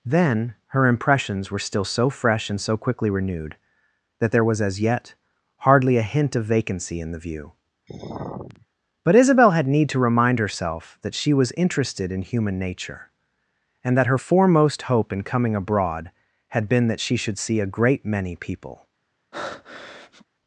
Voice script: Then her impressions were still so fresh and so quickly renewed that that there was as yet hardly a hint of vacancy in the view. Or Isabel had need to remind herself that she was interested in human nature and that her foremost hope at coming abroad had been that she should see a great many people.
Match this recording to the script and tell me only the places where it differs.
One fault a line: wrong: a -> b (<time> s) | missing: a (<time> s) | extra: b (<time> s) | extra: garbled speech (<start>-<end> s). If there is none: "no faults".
missing: that (4.3 s)
wrong: Or -> But (9.0 s)
wrong: at -> in (15.1 s)